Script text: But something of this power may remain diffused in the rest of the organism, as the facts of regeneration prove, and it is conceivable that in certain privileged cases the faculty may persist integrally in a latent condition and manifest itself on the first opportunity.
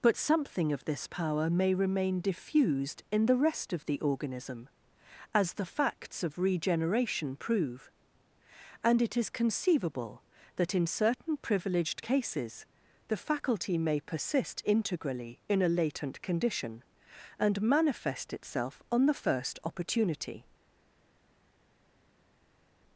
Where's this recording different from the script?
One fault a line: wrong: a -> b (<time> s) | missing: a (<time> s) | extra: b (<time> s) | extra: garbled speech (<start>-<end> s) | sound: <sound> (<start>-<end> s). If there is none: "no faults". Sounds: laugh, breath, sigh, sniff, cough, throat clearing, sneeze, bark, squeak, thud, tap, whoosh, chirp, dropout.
no faults